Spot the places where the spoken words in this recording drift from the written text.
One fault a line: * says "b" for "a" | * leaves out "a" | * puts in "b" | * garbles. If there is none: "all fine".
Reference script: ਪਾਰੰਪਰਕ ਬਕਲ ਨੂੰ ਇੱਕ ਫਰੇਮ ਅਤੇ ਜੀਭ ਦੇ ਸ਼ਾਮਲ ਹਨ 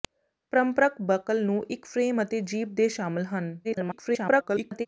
* garbles